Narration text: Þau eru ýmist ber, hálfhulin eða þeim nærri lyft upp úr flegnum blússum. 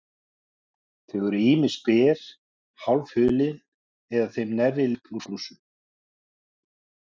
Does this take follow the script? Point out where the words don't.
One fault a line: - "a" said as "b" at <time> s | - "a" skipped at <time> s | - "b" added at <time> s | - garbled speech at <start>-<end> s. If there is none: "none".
- "lyft" skipped at 4.9 s
- "flegnum" skipped at 5.3 s